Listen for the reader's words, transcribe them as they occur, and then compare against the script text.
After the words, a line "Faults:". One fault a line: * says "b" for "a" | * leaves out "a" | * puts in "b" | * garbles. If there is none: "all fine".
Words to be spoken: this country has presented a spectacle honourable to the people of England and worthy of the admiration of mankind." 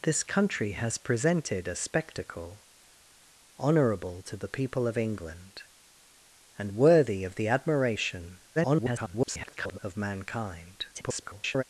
this country has presented a spectacle honourable to the people of England and worthy of the admiration [garbled] of mankind." [garbled]
Faults:
* garbles
* garbles